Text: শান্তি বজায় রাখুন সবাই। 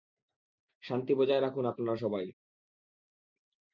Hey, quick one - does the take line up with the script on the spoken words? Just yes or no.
no